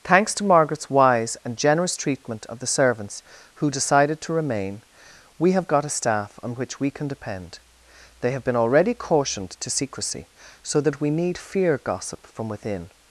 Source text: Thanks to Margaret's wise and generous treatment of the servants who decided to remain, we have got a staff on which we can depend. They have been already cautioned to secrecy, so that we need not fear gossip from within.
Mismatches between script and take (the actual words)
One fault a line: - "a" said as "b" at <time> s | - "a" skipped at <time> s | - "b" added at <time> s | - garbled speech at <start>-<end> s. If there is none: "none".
- "not" skipped at 11.4 s